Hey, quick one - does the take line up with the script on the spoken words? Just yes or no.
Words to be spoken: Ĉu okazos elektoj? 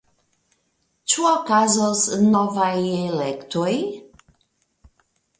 no